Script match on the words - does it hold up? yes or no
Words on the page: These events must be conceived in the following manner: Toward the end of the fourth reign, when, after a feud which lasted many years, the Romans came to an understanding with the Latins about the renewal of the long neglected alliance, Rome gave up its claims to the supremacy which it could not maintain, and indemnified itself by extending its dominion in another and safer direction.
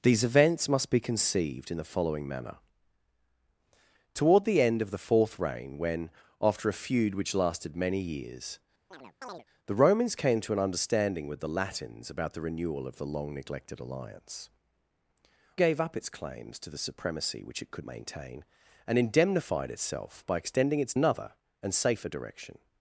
no